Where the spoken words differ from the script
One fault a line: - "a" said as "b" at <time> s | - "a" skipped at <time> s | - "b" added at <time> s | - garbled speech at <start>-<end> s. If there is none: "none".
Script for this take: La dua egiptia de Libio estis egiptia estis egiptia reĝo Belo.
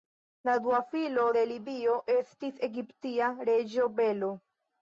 - "egiptia" said as "filo" at 0.9 s
- "estis egiptia" skipped at 3.3 s